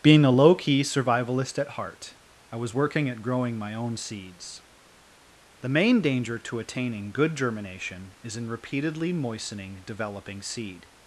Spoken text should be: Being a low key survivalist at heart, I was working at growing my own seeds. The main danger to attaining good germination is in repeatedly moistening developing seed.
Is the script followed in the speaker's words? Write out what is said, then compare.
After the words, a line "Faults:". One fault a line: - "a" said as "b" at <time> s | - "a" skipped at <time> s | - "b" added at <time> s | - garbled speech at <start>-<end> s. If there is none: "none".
Being a low key survivalist at heart, I was working at growing my own seeds. The main danger to attaining good germination is in repeatedly moistening developing seed.
Faults:
none